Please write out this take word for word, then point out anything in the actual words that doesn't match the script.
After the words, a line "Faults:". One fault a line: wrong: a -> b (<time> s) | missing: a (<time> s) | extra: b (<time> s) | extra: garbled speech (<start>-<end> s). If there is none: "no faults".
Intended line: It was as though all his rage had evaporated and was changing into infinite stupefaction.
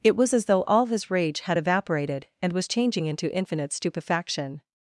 It was as though all his rage had evaporated and was changing into infinite stupefaction.
Faults:
no faults